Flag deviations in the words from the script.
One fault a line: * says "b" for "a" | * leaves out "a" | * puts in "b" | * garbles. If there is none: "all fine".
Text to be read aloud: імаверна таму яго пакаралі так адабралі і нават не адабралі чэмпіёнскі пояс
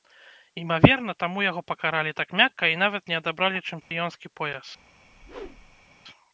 * says "мякка" for "адабралі"